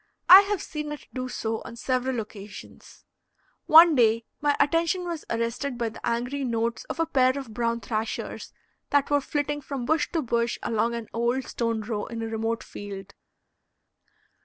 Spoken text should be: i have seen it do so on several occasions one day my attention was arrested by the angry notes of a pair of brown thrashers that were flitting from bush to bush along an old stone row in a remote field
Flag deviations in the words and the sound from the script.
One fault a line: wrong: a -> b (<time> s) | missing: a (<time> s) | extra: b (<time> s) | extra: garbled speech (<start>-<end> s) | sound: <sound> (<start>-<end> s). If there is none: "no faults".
no faults